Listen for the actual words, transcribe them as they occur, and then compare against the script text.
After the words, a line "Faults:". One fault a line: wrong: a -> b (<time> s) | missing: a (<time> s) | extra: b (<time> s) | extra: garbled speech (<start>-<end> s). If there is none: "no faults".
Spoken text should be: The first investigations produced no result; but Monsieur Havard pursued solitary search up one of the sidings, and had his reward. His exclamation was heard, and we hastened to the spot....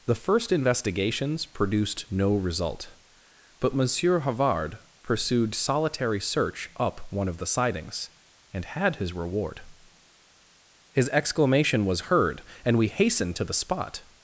The first investigations produced no result; but Monsieur Havard pursued solitary search up one of the sidings, and had his reward. His exclamation was heard, and we hastened to the spot....
Faults:
no faults